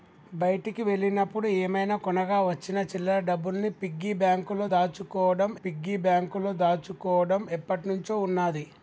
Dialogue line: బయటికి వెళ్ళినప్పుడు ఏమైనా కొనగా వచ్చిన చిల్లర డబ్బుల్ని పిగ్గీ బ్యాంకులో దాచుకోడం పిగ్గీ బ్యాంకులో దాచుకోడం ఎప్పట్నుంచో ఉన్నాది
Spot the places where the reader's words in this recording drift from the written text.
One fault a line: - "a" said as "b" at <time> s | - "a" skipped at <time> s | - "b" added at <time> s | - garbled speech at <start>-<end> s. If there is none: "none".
none